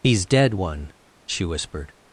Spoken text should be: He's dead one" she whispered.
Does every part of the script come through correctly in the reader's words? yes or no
yes